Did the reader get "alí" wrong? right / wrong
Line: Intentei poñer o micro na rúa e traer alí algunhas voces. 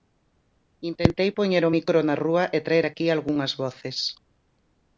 wrong